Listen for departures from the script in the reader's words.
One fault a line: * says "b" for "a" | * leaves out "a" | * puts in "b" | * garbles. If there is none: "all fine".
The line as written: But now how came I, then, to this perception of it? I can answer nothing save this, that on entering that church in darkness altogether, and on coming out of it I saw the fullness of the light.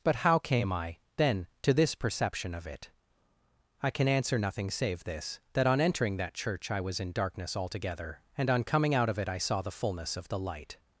* leaves out "now"
* puts in "I was"